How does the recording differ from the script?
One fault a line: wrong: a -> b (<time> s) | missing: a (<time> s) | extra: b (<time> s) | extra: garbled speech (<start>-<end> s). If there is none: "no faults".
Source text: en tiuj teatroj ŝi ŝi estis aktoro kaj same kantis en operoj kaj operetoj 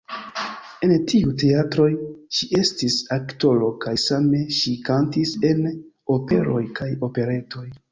missing: ŝi (2.5 s)
extra: ŝi (4.6 s)